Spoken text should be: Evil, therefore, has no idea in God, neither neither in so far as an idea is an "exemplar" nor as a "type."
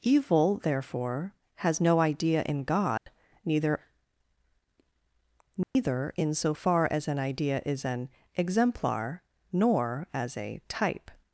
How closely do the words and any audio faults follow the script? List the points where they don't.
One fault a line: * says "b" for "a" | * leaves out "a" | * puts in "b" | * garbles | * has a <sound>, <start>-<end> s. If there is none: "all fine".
* has a dropout, 3.0-3.1 s
* has a dropout, 5.6-5.8 s